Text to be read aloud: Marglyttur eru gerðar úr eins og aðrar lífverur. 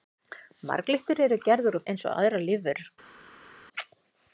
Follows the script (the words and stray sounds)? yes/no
yes